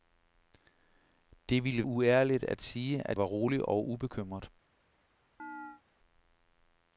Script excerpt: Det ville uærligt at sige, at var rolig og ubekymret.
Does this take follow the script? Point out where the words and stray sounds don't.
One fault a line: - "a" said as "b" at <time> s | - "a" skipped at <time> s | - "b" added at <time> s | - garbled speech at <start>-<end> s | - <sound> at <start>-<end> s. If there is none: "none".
- chirp at 5.4-5.8 s